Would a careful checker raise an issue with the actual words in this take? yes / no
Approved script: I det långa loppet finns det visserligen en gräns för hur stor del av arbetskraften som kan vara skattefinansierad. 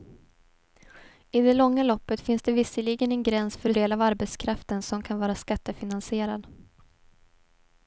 yes